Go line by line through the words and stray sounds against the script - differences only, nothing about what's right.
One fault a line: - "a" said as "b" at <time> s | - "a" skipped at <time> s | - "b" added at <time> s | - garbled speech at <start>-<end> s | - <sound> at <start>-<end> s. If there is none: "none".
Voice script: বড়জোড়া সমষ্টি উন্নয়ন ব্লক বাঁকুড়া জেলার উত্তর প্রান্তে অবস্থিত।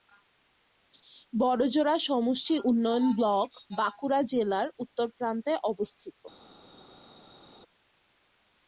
none